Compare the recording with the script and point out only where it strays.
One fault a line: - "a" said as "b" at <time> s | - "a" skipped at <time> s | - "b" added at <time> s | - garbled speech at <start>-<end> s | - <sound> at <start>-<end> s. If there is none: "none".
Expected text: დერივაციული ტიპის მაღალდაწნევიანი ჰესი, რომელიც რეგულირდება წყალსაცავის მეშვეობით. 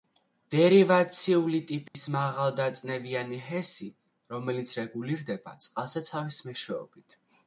- dropout at 1.9-1.9 s